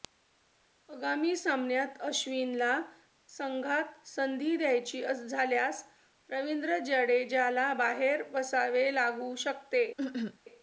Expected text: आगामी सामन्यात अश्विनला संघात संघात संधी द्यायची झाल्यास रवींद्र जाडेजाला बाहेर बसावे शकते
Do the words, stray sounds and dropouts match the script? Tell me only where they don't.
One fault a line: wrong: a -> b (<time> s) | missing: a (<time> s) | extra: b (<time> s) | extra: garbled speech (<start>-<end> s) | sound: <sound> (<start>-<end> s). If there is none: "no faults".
missing: संघात (4.1 s)
extra: लागू (8.9 s)
sound: cough (10.0-10.4 s)